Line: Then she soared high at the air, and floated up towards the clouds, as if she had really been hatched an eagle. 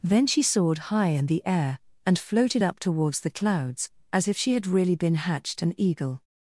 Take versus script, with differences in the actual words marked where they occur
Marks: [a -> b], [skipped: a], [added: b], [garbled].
Then she soared high [at -> in] the air, and floated up towards the clouds, as if she had really been hatched an eagle.